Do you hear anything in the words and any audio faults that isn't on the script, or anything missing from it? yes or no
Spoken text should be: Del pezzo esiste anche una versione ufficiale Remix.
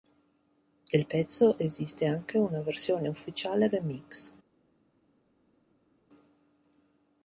no